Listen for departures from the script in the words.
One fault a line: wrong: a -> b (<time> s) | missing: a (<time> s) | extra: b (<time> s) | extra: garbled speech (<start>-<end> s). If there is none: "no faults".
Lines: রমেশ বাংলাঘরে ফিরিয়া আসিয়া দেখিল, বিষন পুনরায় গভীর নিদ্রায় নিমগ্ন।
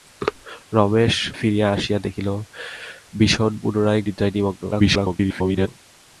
missing: বাংলাঘরে (1.1 s)
missing: গভীর (4.0 s)
extra: garbled speech (4.7-5.7 s)